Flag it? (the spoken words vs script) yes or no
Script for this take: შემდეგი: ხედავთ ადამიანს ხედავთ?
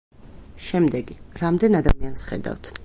yes